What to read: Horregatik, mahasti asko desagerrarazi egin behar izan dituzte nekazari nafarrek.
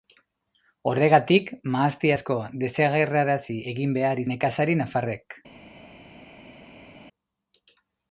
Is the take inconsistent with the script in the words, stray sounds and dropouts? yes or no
yes